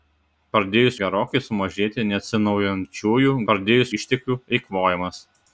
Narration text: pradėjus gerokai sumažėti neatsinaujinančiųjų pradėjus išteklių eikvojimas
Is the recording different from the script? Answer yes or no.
no